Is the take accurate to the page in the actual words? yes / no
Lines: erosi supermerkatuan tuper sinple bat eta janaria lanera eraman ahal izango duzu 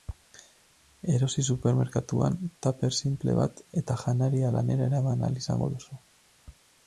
yes